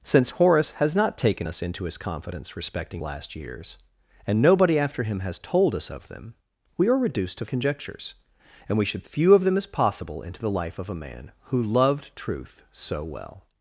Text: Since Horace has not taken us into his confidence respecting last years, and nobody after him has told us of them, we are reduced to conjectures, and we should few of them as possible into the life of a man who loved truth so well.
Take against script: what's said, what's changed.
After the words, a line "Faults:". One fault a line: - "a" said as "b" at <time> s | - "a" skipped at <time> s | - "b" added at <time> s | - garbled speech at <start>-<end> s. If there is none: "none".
Since Horace has not taken us into his confidence respecting last years, and nobody after him has told us of them, we are reduced to conjectures, and we should few of them as possible into the life of a man who loved truth so well.
Faults:
none